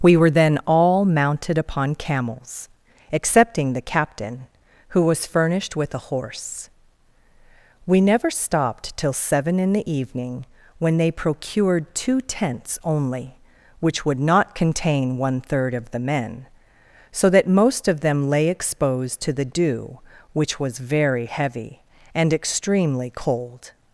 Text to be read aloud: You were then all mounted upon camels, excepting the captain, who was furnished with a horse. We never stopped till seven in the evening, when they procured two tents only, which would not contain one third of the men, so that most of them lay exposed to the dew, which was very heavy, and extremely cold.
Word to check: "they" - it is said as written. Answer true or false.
true